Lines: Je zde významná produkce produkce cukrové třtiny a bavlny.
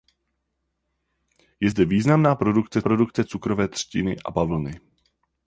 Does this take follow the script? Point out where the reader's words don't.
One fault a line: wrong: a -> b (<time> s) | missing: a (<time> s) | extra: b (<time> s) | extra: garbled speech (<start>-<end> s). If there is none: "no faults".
no faults